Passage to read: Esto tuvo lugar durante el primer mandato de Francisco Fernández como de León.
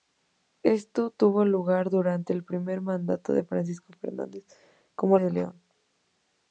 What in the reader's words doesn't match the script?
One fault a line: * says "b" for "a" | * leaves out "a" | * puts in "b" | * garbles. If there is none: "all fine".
all fine